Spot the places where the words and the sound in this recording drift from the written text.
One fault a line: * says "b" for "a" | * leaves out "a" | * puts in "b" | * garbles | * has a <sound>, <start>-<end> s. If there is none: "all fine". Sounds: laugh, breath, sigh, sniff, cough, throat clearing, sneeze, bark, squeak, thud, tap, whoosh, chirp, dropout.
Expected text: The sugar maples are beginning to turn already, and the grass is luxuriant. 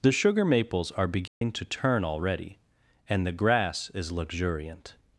* has a dropout, 1.3-1.4 s